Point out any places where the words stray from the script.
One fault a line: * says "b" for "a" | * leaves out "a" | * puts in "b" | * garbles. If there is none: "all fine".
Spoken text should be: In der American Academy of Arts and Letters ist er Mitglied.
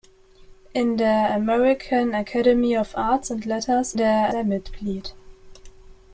* says "der" for "ist"